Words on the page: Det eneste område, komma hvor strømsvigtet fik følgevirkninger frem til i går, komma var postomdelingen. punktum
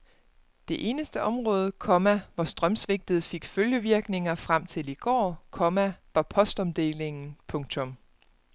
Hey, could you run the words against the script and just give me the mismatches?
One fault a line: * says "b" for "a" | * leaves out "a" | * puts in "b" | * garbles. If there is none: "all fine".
all fine